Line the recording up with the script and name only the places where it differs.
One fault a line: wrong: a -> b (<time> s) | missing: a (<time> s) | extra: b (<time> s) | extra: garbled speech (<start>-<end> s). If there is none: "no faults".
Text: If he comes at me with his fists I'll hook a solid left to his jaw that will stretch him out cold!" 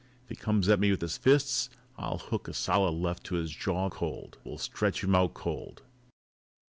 wrong: that -> cold (3.9 s)